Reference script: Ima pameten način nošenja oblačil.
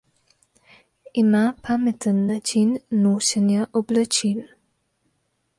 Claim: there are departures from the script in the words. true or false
false